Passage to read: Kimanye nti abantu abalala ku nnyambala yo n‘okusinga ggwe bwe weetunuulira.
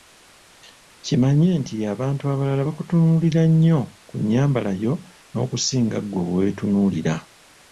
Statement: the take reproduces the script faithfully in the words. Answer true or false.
false